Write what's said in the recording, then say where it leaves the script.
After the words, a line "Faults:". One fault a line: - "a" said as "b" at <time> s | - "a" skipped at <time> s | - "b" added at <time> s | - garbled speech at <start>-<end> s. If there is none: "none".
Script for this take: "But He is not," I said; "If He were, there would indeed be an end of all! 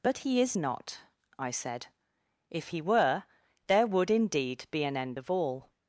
"But He is not," I said; "If He were, there would indeed be an end of all!
Faults:
none